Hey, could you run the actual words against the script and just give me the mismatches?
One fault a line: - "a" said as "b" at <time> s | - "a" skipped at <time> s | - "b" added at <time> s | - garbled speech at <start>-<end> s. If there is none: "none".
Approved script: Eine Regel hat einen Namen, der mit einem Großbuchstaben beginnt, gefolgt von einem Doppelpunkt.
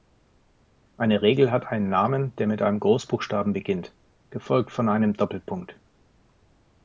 none